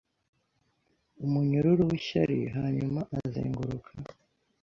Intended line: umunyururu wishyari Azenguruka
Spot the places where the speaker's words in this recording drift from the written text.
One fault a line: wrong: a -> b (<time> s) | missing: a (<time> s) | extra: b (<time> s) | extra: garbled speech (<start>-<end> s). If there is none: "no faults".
extra: Hanyuma (2.5 s)